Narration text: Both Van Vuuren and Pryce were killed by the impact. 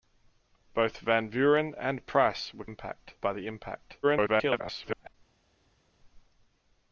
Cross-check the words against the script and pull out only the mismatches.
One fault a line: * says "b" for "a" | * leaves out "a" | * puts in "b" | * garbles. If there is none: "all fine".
* says "impact" for "killed"
* garbles